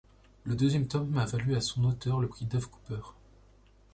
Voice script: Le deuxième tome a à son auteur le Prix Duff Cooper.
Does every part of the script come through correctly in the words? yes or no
no